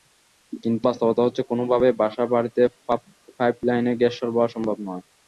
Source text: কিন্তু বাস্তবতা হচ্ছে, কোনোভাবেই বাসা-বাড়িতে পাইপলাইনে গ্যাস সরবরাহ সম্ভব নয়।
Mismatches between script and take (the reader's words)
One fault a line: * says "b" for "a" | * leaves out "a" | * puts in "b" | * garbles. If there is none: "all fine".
all fine